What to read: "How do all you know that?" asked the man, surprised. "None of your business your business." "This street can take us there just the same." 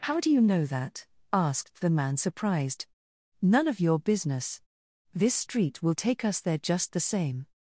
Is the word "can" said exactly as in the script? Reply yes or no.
no